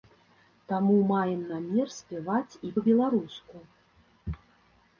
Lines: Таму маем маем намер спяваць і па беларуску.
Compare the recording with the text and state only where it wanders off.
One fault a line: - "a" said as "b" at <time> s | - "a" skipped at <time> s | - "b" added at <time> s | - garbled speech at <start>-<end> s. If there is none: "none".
- "маем" skipped at 1.4 s